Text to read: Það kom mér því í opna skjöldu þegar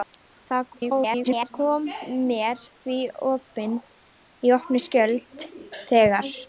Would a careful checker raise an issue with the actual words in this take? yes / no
yes